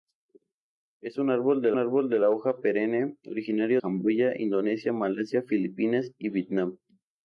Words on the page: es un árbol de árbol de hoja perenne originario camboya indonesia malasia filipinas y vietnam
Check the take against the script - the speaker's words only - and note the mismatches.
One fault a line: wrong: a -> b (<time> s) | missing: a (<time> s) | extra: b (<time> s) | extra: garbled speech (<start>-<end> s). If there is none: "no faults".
no faults